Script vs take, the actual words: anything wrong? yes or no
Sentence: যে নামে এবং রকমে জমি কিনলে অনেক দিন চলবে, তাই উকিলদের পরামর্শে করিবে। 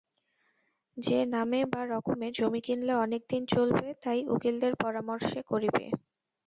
yes